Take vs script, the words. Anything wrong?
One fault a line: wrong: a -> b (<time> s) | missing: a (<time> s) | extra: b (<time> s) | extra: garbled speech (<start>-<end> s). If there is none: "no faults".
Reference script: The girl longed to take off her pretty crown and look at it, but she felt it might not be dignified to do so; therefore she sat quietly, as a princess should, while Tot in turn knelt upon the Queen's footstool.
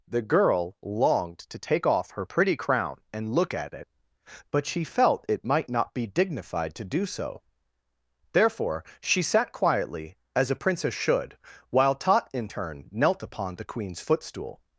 no faults